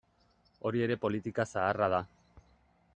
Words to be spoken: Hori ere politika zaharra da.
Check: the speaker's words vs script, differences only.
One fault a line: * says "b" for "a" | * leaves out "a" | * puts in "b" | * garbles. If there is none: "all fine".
all fine